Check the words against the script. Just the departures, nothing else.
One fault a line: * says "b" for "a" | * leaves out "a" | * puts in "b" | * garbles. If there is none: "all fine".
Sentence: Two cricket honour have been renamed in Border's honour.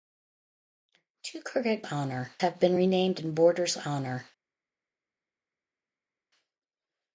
all fine